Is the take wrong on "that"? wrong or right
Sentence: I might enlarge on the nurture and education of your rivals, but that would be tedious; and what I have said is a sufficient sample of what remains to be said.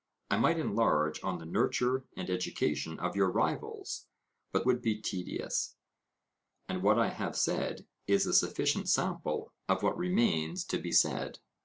wrong